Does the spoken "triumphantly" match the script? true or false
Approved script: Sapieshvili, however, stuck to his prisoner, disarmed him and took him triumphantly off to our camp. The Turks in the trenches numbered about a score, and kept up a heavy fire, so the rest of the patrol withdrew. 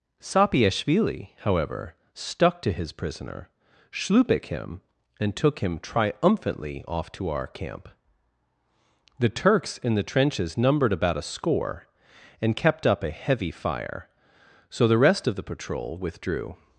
true